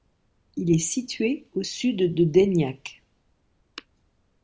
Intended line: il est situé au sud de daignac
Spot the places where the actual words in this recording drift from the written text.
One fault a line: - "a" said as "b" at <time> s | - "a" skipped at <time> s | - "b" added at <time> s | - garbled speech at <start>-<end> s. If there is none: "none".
none